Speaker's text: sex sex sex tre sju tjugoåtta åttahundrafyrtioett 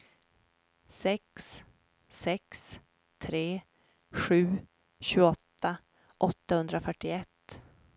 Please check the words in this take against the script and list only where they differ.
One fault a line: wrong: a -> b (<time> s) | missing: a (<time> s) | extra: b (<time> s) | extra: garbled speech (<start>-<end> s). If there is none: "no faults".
missing: sex (2.8 s)